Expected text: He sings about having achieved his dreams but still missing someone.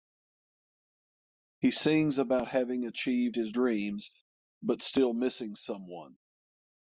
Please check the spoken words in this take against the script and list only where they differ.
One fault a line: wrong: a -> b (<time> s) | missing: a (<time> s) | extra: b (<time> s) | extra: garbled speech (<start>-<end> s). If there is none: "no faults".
no faults